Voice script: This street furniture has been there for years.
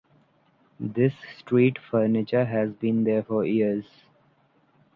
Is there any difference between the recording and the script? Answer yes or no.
no